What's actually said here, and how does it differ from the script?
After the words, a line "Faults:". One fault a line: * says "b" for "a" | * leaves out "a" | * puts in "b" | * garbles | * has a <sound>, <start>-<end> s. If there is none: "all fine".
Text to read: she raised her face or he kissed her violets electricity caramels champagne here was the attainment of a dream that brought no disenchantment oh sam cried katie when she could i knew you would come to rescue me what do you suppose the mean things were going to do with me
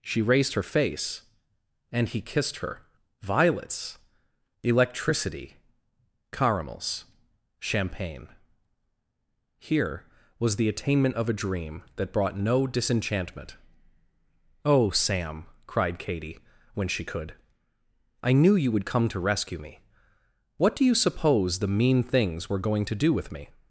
she raised her face and he kissed her violets electricity caramels champagne here was the attainment of a dream that brought no disenchantment oh sam cried katie when she could i knew you would come to rescue me what do you suppose the mean things were going to do with me
Faults:
* says "and" for "or"